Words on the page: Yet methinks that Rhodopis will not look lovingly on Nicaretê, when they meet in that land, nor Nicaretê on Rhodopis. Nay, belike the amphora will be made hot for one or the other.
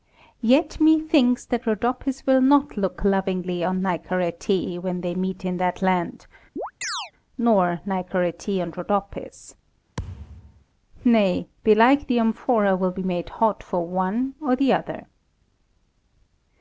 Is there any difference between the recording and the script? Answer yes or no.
no